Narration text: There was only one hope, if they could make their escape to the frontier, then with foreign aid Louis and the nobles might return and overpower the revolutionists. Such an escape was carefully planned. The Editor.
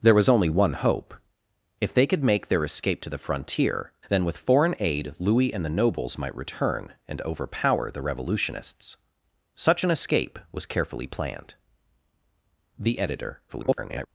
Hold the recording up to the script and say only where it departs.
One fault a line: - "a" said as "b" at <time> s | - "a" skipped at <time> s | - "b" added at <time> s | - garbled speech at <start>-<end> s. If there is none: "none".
- garbled speech at 13.5-14.1 s